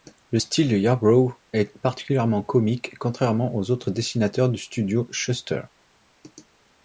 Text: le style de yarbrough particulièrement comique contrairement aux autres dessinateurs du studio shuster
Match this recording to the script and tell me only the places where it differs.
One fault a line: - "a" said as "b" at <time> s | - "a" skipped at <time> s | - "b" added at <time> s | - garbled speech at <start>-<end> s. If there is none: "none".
- "est" added at 1.5 s